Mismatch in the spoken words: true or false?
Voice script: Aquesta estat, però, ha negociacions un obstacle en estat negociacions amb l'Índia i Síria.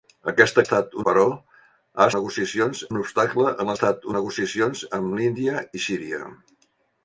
false